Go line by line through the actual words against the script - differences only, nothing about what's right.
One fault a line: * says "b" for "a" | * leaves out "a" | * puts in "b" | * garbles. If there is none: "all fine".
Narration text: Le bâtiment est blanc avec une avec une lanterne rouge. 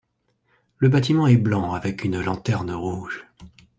* leaves out "avec une"